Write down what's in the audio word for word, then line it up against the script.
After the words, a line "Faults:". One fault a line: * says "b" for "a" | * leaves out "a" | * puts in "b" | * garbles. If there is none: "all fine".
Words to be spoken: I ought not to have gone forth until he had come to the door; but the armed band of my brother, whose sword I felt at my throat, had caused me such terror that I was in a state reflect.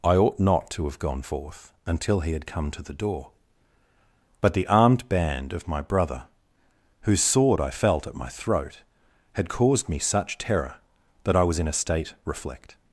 I ought not to have gone forth until he had come to the door; but the armed band of my brother, whose sword I felt at my throat, had caused me such terror that I was in a state reflect.
Faults:
all fine